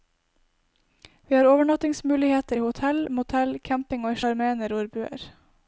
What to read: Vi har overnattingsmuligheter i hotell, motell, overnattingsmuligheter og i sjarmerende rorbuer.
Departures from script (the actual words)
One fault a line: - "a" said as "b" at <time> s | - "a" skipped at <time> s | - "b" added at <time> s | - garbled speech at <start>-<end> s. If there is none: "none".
- "overnattingsmuligheter" said as "camping" at 3.6 s